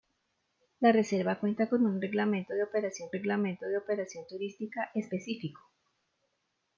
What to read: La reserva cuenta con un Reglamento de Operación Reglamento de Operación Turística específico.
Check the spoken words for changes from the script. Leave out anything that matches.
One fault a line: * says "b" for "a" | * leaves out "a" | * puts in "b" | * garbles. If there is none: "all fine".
all fine